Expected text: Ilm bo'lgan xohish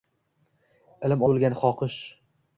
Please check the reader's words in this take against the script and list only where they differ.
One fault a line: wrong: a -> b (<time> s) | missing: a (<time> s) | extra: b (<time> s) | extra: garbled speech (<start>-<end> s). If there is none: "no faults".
no faults